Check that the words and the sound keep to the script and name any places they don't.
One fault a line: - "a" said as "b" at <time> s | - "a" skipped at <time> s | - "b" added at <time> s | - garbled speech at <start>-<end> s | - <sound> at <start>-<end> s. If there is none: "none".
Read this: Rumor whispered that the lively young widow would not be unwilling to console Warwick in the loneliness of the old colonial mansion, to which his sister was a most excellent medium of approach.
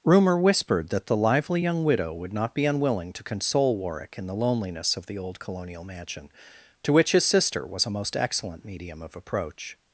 none